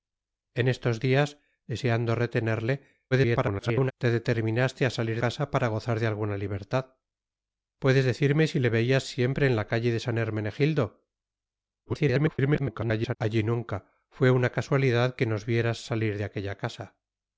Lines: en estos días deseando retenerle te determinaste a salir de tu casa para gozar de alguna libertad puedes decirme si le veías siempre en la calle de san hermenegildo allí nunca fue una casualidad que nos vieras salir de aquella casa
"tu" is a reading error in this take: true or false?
true